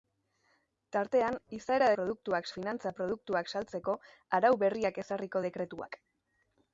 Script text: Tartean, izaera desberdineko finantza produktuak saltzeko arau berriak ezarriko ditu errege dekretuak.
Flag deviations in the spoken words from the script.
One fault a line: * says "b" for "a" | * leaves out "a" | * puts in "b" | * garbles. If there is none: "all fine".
* says "produktuak" for "desberdineko"
* leaves out "ditu errege"